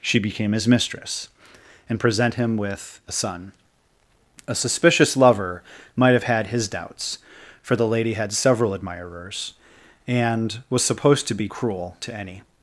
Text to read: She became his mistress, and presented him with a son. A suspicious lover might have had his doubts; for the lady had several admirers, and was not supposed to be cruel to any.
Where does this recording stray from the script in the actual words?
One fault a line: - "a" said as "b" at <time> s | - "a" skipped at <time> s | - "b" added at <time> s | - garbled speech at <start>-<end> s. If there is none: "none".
- "presented" said as "present" at 2.0 s
- "not" skipped at 10.8 s